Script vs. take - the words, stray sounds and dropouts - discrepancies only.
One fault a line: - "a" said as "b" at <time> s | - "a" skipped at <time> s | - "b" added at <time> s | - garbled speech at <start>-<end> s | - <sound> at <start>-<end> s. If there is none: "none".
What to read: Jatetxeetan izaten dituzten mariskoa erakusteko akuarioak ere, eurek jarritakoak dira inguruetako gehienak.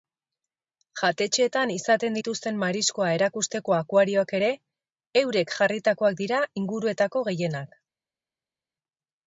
none